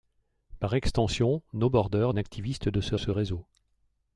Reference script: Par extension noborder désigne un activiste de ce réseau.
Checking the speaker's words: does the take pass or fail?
fail